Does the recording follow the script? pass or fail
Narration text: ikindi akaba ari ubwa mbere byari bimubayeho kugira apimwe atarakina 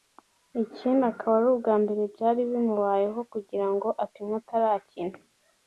fail